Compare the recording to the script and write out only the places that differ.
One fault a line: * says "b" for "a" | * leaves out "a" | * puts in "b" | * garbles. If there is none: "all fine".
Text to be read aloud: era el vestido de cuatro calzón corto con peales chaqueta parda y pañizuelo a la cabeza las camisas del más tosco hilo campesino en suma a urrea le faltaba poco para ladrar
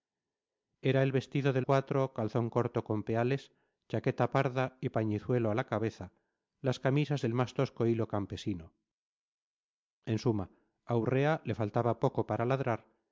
all fine